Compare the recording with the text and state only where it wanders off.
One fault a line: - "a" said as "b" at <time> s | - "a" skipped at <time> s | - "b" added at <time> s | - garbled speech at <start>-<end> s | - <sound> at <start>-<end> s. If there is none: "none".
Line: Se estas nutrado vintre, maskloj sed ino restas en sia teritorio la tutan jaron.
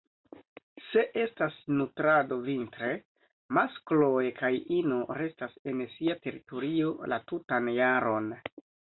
- "sed" said as "kaj" at 4.4 s